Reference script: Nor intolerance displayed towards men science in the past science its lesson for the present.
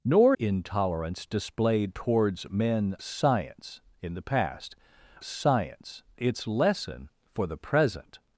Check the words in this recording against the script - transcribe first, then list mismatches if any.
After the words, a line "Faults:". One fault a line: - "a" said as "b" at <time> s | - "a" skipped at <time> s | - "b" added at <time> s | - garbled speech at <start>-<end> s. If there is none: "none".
Nor intolerance displayed towards men science in the past science its lesson for the present.
Faults:
none